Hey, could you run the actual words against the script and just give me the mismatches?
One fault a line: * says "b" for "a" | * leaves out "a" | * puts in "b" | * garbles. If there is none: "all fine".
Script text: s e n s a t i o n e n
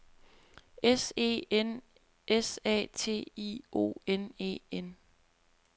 all fine